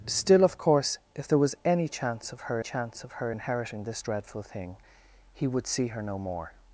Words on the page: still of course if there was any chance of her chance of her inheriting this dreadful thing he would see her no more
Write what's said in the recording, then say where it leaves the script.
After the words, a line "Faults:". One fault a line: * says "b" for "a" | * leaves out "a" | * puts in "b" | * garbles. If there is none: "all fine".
still of course if there was any chance of her chance of her inheriting this dreadful thing he would see her no more
Faults:
all fine